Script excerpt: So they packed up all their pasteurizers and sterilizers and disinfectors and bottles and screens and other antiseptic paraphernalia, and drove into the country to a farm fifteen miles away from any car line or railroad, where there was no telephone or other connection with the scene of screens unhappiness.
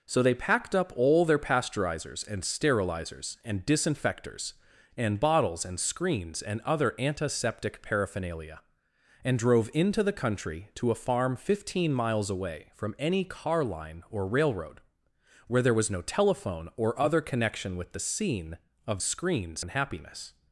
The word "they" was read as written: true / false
true